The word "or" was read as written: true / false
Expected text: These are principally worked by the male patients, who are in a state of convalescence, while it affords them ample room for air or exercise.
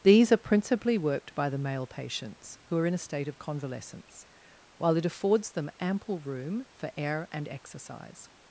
false